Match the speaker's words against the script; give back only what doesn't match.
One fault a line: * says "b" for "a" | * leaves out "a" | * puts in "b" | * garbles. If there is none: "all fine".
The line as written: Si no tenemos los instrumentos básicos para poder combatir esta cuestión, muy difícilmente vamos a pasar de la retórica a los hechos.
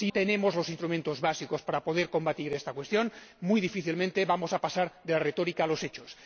* leaves out "no"